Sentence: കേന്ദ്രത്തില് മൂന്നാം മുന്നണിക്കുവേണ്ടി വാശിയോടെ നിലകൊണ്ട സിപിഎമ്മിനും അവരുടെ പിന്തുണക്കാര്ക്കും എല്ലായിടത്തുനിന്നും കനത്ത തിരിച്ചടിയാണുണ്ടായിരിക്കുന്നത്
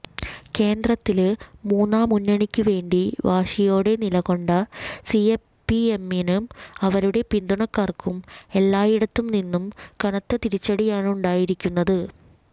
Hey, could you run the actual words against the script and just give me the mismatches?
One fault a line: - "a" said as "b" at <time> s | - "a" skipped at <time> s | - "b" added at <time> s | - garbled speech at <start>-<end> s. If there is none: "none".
none